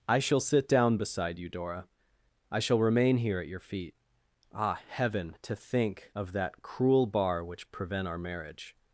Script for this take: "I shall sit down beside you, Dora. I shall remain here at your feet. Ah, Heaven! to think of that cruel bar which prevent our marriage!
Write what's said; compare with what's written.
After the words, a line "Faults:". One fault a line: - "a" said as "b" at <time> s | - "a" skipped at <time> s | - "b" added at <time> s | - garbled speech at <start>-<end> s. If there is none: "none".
"I shall sit down beside you, Dora. I shall remain here at your feet. Ah, Heaven! to think of that cruel bar which prevent our marriage!
Faults:
none